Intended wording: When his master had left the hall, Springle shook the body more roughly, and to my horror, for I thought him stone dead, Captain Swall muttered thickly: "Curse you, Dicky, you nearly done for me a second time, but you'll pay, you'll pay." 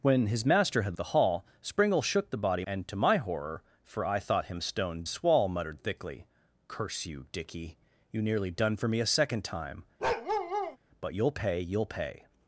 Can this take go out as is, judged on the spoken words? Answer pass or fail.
fail